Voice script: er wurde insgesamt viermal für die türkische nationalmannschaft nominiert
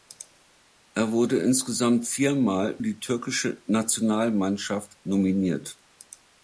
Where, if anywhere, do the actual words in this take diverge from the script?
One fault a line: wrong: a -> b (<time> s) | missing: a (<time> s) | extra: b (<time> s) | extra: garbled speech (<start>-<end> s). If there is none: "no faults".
missing: für (2.8 s)